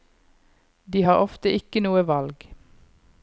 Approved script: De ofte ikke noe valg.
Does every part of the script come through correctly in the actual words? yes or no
no